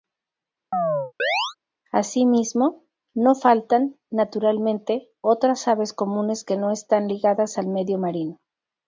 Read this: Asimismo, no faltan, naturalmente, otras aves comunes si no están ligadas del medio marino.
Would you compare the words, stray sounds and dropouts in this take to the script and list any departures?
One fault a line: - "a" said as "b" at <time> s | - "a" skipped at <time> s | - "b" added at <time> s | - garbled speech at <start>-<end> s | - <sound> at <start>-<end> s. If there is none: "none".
- chirp at 0.7-1.6 s
- "si" said as "que" at 6.4 s
- "del" said as "al" at 7.6 s